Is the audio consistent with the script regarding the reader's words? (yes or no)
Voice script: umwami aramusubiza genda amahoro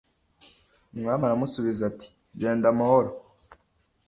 no